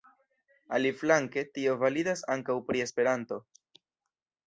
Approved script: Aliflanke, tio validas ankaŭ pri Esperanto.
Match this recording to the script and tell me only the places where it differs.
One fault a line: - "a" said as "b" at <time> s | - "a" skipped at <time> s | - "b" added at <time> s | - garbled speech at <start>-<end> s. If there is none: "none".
none